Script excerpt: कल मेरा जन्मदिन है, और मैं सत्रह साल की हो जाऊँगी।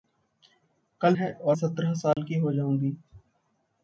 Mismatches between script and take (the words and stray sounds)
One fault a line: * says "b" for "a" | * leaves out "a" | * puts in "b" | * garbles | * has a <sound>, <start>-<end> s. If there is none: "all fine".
* leaves out "मेरा जन्मदिन"
* leaves out "मैं"
* has a dropout, 2.1-2.2 s